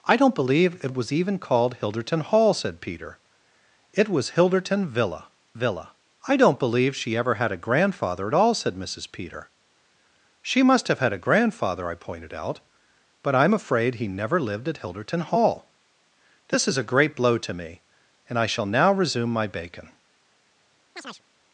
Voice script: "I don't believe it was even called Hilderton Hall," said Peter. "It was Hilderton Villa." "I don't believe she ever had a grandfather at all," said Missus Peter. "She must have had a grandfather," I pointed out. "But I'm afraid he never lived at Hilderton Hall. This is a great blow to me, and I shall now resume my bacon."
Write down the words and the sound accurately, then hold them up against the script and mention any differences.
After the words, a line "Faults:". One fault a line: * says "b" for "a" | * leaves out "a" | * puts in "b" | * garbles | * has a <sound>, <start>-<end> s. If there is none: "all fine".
"I don't believe it was even called Hilderton Hall," said Peter. "It was Hilderton Villa Villa." "I don't believe she ever had a grandfather at all," said Missus Peter. "She must have had a grandfather," I pointed out. "But I'm afraid he never lived at Hilderton Hall. This is a great blow to me, and I shall now resume my bacon."
Faults:
* puts in "Villa"
* has a chirp, 21.0-21.2 s